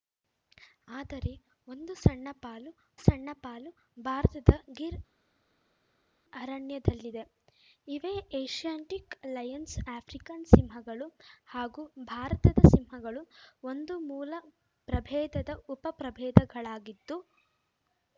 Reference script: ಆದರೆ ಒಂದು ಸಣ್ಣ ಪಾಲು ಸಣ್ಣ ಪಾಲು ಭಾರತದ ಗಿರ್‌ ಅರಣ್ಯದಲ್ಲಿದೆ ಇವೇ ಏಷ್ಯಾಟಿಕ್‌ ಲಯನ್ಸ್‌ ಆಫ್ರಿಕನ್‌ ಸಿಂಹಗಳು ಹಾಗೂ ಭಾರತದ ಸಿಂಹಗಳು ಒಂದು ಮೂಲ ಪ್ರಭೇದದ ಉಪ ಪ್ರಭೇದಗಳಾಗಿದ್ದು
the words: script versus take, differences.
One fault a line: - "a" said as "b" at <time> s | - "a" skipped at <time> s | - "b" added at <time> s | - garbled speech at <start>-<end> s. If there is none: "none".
none